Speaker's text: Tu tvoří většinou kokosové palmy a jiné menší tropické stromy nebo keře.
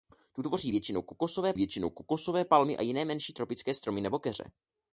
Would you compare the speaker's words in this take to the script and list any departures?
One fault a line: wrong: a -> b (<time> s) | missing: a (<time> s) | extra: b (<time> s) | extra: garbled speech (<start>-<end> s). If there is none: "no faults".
extra: většinou kokosové (1.5 s)